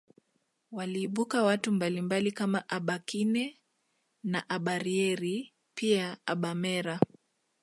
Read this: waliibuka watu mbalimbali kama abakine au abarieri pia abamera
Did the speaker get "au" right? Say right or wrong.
wrong